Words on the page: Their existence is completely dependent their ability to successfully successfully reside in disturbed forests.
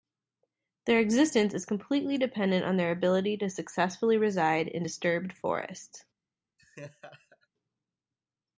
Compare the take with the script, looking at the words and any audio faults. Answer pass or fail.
fail